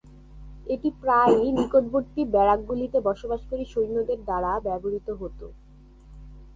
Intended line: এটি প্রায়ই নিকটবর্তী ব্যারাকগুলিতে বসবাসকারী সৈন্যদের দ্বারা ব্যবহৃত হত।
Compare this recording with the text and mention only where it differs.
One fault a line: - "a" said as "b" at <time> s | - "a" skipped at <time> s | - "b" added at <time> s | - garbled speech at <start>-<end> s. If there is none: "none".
none